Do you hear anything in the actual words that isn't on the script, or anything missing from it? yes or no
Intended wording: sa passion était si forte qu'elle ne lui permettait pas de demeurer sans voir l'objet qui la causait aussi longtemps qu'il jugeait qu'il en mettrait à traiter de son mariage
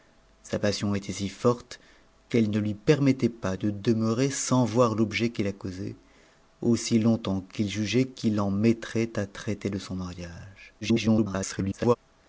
yes